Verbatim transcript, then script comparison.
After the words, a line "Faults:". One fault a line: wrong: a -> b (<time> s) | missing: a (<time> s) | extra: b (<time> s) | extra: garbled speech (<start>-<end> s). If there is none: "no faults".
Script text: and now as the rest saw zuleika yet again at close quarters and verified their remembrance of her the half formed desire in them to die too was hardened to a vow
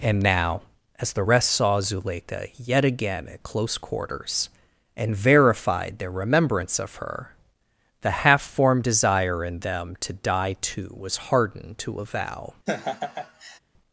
and now as the rest saw zuleika yet again at close quarters and verified their remembrance of her the half formed desire in them to die too was hardened to a vow
Faults:
no faults